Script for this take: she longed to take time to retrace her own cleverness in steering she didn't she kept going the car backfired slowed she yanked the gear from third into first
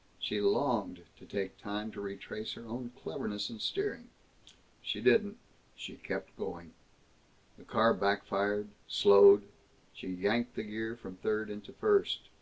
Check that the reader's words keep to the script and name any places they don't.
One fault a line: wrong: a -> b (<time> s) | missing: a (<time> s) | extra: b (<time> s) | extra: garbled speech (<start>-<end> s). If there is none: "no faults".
no faults